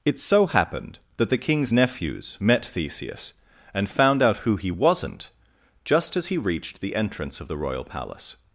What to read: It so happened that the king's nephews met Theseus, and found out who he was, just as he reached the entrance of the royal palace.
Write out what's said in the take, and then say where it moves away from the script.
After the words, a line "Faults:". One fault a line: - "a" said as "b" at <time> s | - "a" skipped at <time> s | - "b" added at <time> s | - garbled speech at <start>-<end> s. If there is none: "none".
It so happened that the king's nephews met Theseus, and found out who he wasn't, just as he reached the entrance of the royal palace.
Faults:
- "was" said as "wasn't" at 4.7 s